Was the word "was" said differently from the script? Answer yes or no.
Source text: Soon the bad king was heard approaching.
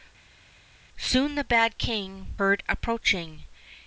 yes